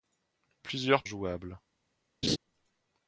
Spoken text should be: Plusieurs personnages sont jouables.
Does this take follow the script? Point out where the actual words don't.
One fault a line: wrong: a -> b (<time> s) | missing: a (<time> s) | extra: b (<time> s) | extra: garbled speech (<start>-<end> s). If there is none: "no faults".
missing: personnages sont (1.0 s)